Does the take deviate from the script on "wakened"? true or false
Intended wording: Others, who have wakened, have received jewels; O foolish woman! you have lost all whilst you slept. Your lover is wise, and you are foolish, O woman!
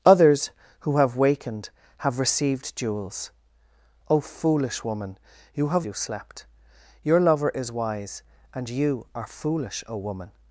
false